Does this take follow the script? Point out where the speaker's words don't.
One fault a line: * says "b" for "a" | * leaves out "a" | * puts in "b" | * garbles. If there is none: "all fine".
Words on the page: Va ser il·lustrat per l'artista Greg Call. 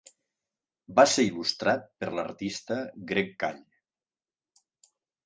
all fine